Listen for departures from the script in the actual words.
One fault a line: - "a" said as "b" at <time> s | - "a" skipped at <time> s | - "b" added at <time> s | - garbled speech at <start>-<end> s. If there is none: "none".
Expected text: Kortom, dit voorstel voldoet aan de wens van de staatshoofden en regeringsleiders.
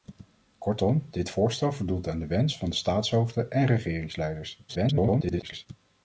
- garbled speech at 4.7-5.7 s